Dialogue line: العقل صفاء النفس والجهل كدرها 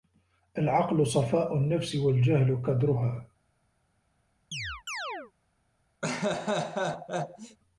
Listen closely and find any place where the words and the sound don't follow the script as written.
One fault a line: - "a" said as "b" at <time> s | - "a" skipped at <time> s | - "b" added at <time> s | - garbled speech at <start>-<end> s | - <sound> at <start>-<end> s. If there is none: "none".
- chirp at 4.5-5.3 s
- laugh at 6.0-7.6 s